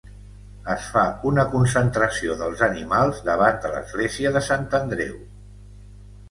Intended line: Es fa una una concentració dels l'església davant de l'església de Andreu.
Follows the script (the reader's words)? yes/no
no